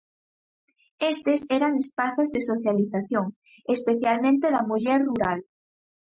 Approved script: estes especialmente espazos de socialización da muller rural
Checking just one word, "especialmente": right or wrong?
wrong